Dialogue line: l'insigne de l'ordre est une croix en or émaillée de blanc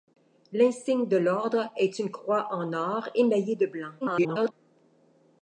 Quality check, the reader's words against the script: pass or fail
fail